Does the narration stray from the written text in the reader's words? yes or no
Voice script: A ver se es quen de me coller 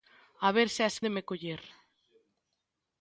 yes